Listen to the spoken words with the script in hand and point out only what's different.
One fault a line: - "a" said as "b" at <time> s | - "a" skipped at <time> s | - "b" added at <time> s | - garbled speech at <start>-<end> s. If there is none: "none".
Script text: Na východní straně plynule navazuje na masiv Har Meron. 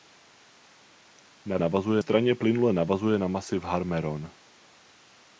- "východní" said as "navazuje" at 1.6 s